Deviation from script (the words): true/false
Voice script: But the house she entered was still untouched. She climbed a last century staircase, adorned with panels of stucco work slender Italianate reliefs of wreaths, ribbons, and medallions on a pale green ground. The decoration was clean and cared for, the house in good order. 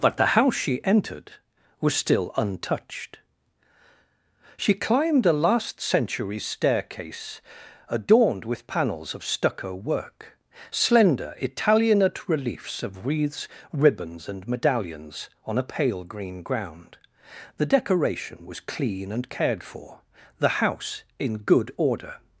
false